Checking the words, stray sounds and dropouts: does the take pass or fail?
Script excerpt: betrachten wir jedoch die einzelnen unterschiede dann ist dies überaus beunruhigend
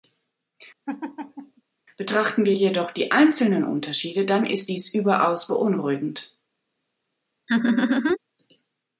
fail